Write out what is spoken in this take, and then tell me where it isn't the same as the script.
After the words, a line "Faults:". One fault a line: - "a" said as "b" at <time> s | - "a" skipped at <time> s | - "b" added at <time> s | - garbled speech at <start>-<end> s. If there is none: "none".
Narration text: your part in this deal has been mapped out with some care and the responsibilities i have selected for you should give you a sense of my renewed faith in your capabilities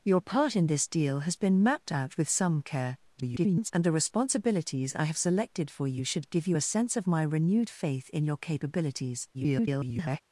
your part in this deal has been mapped out with some care [garbled] and the responsibilities i have selected for you should give you a sense of my renewed faith in your capabilities [garbled]
Faults:
- garbled speech at 3.1-3.7 s
- garbled speech at 9.3-10.2 s